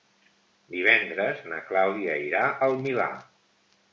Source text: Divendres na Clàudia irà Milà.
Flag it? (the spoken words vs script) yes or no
yes